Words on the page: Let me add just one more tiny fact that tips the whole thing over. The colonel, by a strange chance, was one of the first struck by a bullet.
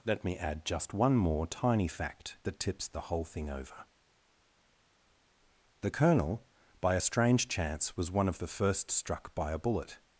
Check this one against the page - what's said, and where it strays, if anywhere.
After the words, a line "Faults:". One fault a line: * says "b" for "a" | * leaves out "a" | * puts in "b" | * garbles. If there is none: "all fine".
Let me add just one more tiny fact that tips the whole thing over. The colonel, by a strange chance, was one of the first struck by a bullet.
Faults:
all fine